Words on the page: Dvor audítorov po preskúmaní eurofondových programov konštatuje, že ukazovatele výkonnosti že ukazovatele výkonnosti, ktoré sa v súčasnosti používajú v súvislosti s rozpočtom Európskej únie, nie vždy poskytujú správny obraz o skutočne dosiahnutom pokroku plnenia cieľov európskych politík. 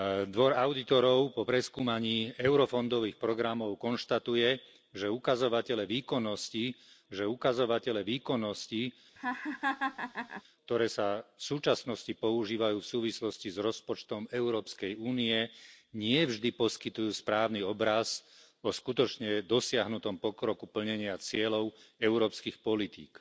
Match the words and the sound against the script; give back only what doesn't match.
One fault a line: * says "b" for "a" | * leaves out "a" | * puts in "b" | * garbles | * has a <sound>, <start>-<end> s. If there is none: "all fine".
* has a laugh, 9.2-10.4 s